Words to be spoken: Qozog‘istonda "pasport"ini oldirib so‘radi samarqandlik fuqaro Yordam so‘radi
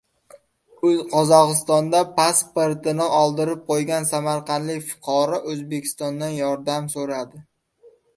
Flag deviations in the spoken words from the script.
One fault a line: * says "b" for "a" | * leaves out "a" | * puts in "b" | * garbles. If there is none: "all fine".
* says "qo‘ygan" for "so‘radi"
* puts in "O‘zbekistondan"